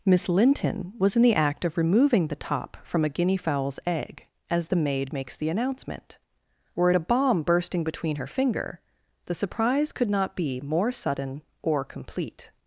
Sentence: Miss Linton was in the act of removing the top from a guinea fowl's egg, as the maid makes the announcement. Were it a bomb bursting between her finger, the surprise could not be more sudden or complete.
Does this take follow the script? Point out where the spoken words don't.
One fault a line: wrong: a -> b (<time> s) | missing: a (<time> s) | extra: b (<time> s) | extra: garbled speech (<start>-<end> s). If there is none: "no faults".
no faults